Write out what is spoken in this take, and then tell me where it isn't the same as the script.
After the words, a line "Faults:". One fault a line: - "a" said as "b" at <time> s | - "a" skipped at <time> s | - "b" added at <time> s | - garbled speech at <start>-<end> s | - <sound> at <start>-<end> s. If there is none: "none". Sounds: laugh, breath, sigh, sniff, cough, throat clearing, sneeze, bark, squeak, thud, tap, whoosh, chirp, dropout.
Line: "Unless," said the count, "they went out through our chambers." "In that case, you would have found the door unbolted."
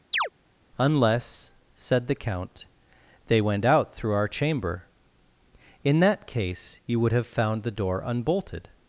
"Unless," said the count, "they went out through our chamber." "In that case, you would have found the door unbolted."
Faults:
- chirp at 0.1-0.3 s
- "chambers" said as "chamber" at 4.3 s